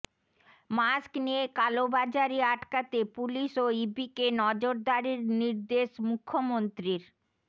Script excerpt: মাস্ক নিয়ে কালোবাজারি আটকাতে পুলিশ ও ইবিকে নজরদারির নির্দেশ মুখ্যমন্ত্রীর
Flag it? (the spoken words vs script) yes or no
no